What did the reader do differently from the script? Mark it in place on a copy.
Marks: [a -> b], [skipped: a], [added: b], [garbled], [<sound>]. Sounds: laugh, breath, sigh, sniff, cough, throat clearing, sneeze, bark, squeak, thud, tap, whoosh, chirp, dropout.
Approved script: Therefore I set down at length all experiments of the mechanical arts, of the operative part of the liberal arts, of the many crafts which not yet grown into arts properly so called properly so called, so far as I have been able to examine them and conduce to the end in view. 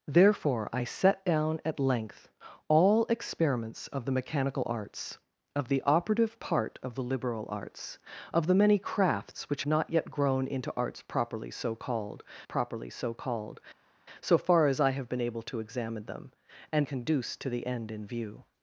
Therefore I set down at length all experiments of the mechanical arts, of the operative part of the liberal arts, of the many crafts which not yet grown into arts properly so called properly so called, so far as I have been able to examine them and conduce to the end in view.